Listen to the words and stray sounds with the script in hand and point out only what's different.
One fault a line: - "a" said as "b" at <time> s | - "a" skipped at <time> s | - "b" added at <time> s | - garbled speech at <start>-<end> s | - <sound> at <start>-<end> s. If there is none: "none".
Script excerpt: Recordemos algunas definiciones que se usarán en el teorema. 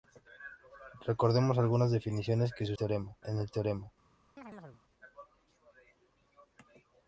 - "usarán" said as "teorema" at 2.7 s
- chirp at 4.4-4.8 s